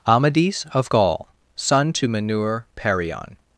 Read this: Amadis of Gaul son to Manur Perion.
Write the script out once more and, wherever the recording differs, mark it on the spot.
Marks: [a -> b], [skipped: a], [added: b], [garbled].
Amadis of Gaul son to Manur Perion.